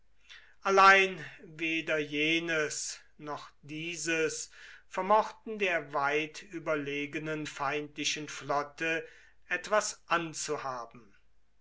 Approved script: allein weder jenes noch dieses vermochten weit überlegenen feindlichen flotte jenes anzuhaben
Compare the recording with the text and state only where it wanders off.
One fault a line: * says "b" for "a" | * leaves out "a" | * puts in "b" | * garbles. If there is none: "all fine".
* puts in "der"
* says "etwas" for "jenes"